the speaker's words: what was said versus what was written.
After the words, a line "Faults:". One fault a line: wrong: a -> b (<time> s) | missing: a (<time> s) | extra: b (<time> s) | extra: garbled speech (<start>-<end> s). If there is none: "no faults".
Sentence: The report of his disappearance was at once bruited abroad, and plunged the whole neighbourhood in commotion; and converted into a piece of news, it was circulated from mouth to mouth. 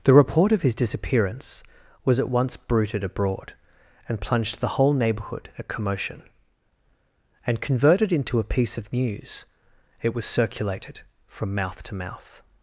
The report of his disappearance was at once bruited abroad, and plunged the whole neighbourhood at commotion; and converted into a piece of news, it was circulated from mouth to mouth.
Faults:
wrong: in -> at (5.6 s)